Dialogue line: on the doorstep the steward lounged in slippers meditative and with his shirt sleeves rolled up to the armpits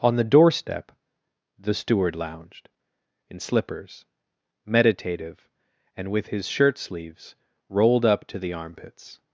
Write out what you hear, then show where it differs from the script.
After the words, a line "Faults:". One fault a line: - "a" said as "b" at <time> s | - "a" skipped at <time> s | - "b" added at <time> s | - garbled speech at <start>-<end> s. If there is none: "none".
on the doorstep the steward lounged in slippers meditative and with his shirt sleeves rolled up to the armpits
Faults:
none